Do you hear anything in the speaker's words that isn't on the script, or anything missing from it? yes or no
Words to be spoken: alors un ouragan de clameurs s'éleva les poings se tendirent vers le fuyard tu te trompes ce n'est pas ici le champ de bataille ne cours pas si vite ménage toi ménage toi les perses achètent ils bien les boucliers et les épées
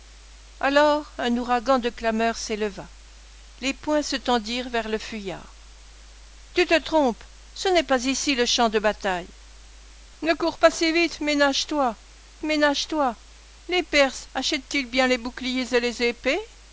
no